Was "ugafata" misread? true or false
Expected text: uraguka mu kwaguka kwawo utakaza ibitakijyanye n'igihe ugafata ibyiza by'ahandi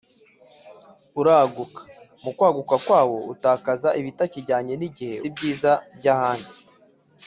true